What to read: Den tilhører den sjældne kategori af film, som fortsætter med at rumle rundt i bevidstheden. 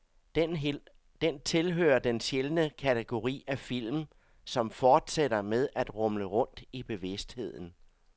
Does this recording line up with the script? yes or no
yes